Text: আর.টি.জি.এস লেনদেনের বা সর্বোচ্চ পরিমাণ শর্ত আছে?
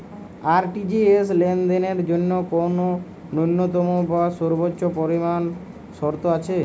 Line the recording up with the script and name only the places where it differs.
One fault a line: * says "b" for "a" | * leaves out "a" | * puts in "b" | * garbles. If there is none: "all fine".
* puts in "জন্য কোন ন্যূনতম"